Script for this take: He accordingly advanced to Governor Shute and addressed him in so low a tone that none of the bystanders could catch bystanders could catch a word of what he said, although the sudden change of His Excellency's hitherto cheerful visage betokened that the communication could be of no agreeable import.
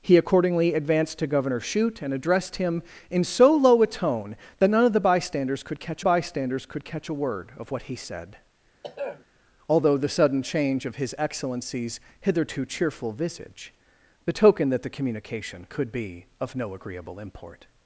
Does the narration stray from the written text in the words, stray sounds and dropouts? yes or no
yes